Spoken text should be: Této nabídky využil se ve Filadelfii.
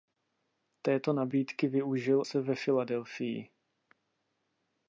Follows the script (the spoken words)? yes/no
yes